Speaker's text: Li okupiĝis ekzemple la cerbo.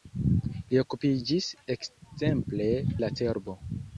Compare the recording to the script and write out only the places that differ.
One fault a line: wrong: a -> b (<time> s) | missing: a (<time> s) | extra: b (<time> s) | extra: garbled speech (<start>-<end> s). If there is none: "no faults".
no faults